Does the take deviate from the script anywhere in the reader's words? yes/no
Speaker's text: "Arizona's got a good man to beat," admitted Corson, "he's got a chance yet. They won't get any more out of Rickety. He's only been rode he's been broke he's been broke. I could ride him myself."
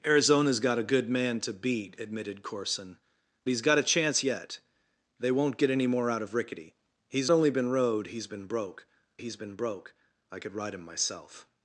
no